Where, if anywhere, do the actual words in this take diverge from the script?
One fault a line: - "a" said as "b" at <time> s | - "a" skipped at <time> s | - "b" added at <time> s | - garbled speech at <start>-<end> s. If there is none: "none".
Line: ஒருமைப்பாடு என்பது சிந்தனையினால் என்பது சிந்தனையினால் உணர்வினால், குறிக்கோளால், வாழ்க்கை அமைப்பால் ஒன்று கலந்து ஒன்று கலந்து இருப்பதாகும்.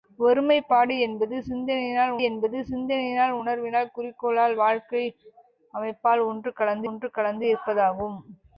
none